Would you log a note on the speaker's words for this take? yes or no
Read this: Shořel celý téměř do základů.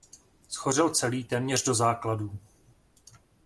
no